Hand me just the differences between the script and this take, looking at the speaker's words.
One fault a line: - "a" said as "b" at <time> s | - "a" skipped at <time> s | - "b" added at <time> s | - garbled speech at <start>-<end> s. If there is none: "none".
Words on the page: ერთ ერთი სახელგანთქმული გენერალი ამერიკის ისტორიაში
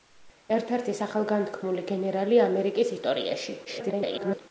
- garbled speech at 3.6-4.4 s